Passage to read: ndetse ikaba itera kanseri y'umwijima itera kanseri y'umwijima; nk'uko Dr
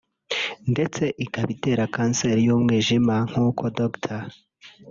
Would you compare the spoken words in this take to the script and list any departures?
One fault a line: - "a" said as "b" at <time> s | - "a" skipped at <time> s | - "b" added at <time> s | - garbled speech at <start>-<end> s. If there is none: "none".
- "itera kanseri y'umwijima" skipped at 3.1 s